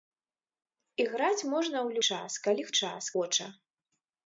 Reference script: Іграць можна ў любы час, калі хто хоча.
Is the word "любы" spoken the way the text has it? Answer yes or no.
no